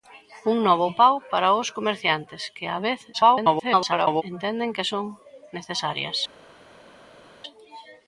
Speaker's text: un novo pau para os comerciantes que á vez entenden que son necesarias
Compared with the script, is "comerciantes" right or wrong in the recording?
right